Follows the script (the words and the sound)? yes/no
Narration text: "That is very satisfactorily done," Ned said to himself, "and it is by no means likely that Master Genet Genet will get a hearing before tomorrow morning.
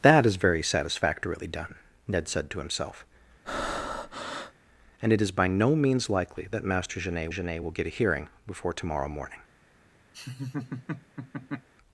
no